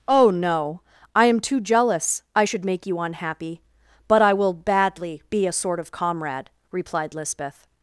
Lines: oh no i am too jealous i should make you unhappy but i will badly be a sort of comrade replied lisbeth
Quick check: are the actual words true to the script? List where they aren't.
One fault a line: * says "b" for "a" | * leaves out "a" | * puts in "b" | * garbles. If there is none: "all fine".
all fine